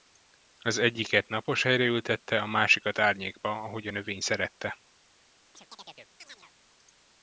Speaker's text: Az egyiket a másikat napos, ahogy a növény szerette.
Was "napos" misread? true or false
true